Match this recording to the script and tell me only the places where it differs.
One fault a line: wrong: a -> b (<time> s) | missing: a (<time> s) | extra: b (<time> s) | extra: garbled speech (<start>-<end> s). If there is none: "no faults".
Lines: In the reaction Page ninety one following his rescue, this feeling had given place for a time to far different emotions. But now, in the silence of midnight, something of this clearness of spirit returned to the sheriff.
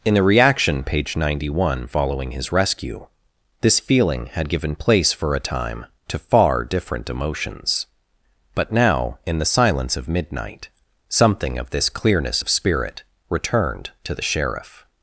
no faults